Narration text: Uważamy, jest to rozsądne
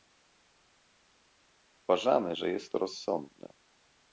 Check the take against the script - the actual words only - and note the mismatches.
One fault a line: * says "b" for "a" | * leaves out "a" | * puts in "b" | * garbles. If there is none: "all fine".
* puts in "że"